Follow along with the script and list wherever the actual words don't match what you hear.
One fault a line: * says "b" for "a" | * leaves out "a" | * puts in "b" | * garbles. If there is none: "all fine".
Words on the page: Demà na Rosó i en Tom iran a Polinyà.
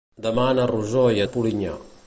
* leaves out "en Tom iran"